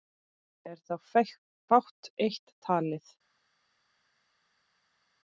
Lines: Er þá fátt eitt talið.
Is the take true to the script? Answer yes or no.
yes